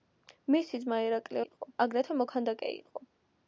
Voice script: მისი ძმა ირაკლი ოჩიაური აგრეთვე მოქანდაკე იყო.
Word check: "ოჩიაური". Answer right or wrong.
wrong